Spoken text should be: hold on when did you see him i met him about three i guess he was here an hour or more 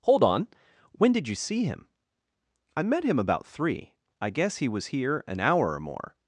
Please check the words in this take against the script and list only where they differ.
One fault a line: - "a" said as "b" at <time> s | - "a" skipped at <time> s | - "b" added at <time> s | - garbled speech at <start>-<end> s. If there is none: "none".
none